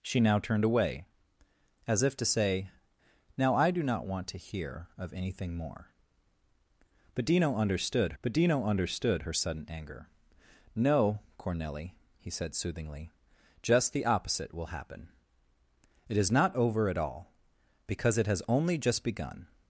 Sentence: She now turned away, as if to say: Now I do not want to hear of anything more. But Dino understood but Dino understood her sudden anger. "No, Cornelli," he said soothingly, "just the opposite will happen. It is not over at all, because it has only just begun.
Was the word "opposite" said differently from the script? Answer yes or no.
no